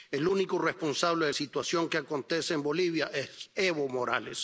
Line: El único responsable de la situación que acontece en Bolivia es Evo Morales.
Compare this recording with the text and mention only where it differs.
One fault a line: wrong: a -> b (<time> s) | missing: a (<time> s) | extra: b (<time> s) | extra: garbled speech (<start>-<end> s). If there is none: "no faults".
missing: la (1.3 s)